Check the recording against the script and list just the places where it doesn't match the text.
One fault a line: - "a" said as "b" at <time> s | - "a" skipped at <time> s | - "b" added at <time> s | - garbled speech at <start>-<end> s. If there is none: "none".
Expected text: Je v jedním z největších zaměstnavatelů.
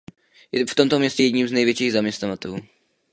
- "tomto městě" added at 0.7 s